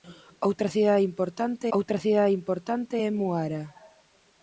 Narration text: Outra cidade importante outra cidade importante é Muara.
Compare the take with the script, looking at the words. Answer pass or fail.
pass